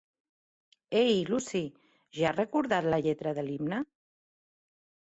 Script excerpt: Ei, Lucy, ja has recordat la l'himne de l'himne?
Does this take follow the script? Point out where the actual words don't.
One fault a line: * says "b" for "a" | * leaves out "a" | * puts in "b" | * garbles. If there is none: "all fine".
* says "lletra" for "l'himne"